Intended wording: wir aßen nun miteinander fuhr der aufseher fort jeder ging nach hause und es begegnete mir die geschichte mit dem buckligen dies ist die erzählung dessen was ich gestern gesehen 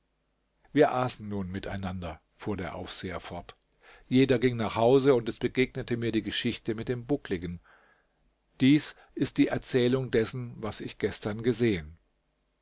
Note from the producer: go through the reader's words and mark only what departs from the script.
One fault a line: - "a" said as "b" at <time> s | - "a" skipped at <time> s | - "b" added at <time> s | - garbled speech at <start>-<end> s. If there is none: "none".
none